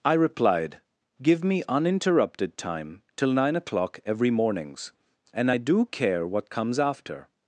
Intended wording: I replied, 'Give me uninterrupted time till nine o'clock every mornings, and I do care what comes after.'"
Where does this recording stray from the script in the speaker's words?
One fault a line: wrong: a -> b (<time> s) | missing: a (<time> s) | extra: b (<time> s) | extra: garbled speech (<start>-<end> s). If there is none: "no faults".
no faults